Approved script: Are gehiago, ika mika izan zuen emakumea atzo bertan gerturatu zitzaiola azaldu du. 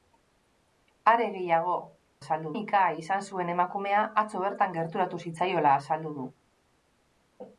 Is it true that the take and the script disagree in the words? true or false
true